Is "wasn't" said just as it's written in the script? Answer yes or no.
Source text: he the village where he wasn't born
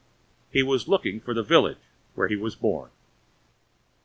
no